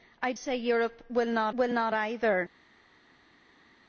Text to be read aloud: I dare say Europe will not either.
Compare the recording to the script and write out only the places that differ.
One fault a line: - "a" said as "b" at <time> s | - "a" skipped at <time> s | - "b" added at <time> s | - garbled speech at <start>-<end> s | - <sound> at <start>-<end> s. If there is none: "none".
- "dare" skipped at 0.3 s
- "will not" added at 1.5 s